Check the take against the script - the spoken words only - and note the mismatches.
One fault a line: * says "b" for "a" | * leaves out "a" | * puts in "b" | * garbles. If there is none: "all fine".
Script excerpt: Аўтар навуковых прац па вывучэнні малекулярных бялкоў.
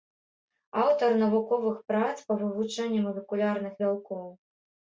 all fine